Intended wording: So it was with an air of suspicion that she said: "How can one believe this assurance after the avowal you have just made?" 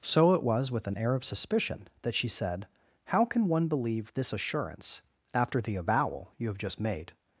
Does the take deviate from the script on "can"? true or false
false